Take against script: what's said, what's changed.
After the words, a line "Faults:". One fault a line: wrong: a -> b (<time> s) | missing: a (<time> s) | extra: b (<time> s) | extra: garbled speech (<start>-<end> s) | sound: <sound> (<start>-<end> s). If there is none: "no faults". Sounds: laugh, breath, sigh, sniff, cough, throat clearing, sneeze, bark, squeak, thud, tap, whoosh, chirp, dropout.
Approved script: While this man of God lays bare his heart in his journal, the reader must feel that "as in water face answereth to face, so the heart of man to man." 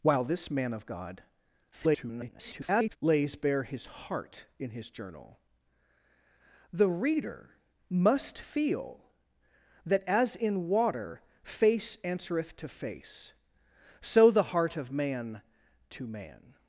While this man of God [garbled] lays bare his heart in his journal, the reader must feel that "as in water face answereth to face, so the heart of man to man."
Faults:
extra: garbled speech (1.7-3.0 s)